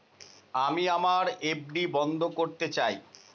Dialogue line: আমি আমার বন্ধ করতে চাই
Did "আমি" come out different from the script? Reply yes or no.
no